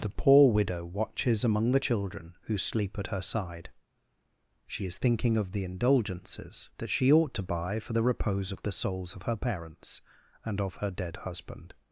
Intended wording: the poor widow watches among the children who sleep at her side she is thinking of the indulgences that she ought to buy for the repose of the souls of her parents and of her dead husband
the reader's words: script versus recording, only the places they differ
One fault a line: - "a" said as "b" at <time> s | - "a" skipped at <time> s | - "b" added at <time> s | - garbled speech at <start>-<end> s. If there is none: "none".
none